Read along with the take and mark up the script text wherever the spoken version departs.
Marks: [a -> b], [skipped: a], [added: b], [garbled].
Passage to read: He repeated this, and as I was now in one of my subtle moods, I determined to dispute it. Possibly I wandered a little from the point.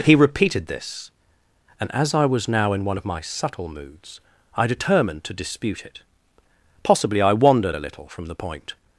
He repeated this, and as I was now in one of my subtle moods, I determined to dispute it. Possibly I wandered a little from the point.